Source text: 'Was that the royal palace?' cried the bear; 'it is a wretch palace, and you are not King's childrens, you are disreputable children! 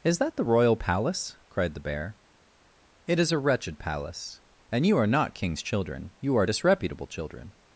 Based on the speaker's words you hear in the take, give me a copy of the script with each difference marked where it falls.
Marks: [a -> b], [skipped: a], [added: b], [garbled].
['Was -> Is] that the royal palace?' cried the bear; 'it is a [wretch -> wretched] palace, and you are not King's [childrens, -> children] you are disreputable children!